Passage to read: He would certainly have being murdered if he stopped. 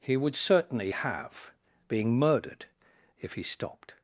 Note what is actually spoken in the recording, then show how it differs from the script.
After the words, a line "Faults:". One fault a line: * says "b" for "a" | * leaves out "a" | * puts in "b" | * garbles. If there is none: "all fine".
He would certainly have being murdered if he stopped.
Faults:
all fine